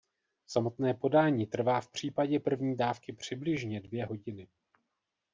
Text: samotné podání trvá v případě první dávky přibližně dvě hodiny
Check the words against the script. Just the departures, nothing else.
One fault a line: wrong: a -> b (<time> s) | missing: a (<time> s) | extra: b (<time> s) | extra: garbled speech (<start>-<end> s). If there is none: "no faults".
no faults